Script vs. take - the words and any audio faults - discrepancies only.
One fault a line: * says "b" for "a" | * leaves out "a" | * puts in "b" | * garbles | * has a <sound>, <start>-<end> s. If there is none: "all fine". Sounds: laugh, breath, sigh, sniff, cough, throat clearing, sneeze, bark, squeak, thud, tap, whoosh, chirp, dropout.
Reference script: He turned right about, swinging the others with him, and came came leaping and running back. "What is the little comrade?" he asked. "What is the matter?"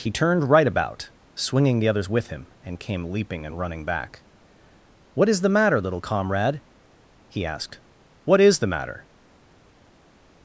* leaves out "came"
* puts in "matter"